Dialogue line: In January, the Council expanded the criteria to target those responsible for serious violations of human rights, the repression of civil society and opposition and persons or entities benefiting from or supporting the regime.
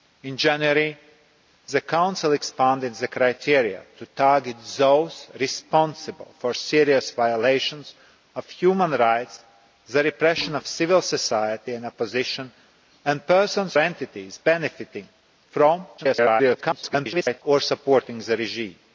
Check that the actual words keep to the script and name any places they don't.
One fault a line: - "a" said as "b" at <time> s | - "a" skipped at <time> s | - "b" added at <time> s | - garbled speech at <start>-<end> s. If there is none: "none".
- "or" skipped at 13.8 s
- garbled speech at 16.0-17.4 s